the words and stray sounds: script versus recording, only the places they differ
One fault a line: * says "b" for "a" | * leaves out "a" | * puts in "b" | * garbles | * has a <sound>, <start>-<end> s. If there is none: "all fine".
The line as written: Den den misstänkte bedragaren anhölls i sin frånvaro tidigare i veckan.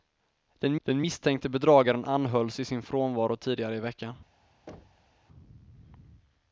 * has a thud, 4.7-5.2 s